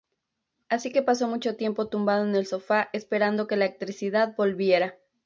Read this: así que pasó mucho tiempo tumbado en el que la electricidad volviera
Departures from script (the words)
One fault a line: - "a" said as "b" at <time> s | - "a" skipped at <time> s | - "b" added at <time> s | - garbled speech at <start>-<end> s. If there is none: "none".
- "sofá esperando" added at 2.5 s